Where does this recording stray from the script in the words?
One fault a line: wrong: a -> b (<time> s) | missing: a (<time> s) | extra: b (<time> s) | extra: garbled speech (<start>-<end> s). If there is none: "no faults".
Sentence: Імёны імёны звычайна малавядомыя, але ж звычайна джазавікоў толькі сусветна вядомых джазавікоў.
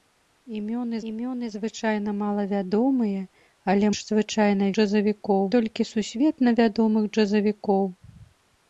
no faults